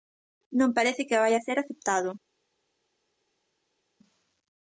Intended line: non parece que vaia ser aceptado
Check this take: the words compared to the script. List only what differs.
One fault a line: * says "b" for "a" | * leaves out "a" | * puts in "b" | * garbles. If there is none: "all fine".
all fine